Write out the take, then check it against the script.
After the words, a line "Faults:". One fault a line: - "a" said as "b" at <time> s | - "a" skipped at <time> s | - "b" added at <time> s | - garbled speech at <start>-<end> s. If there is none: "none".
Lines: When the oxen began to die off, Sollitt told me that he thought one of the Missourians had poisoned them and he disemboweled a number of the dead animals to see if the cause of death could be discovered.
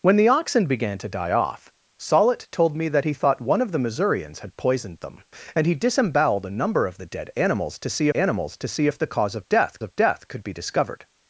When the oxen began to die off, Sollitt told me that he thought one of the Missourians had poisoned them and he disemboweled a number of the dead animals to see animals to see if the cause of death of death could be discovered.
Faults:
- "animals to see" added at 8.1 s
- "of death" added at 9.8 s